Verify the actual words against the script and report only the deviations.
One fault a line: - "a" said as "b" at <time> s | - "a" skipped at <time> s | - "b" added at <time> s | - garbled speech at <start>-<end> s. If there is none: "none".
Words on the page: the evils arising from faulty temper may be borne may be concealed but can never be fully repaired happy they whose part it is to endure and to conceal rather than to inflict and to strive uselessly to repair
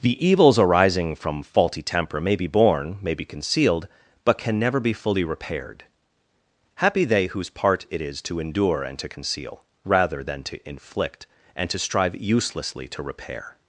none